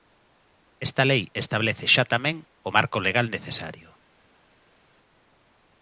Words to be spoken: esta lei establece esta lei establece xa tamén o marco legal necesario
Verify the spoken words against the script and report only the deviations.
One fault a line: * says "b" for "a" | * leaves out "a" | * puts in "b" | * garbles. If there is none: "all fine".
* leaves out "esta lei establece"